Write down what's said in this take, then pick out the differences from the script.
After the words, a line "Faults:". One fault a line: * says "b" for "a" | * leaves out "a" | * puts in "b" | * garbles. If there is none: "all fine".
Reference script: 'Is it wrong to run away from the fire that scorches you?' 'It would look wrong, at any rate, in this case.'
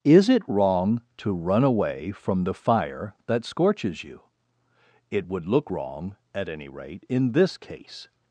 'Is it wrong to run away from the fire that scorches you?' 'It would look wrong, at any rate, in this case.'
Faults:
all fine